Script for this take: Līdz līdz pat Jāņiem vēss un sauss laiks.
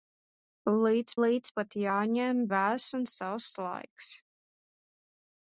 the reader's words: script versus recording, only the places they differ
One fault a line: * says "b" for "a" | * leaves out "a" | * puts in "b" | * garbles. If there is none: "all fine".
all fine